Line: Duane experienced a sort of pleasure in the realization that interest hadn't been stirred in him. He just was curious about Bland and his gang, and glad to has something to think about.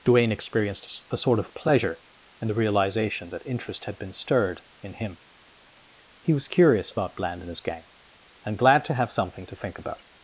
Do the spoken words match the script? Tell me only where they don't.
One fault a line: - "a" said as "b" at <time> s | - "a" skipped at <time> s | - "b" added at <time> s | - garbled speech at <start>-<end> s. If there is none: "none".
- "hadn't" said as "had" at 3.9 s
- "just" skipped at 6.3 s
- "has" said as "have" at 8.9 s